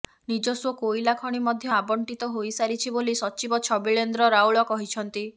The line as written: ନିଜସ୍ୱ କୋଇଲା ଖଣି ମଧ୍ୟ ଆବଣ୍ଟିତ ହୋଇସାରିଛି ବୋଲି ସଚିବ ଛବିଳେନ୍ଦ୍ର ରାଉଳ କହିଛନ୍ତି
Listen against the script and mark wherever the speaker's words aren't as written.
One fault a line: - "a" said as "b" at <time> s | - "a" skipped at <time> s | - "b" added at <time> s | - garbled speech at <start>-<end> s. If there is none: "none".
none